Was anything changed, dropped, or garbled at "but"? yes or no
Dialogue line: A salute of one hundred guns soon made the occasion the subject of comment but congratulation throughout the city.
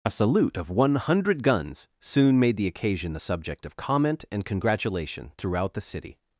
yes